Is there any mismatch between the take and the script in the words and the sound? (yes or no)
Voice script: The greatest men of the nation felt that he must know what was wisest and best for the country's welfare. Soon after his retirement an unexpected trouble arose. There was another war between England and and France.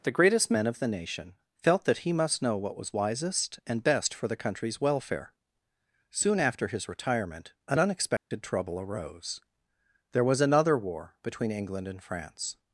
yes